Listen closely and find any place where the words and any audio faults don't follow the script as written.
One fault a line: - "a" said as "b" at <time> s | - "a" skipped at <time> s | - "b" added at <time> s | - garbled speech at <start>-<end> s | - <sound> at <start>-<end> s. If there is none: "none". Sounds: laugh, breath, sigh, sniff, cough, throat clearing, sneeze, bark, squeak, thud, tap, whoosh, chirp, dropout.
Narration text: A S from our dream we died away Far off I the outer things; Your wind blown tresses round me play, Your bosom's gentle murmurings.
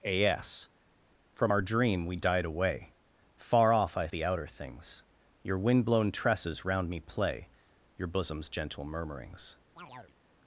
- chirp at 9.8-10.2 s